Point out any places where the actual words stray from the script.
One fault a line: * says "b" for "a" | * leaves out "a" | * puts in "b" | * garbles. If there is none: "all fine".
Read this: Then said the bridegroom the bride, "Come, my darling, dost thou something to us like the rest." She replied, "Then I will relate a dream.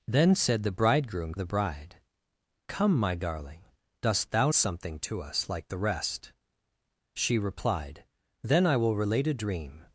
all fine